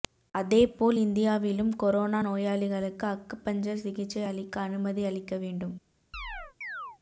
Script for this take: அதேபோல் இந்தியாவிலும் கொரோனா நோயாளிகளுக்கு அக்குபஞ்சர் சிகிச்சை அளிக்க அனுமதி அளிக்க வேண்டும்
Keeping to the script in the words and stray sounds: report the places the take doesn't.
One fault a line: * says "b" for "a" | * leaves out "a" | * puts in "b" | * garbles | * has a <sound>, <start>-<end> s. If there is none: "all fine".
* has a chirp, 6.1-7.0 s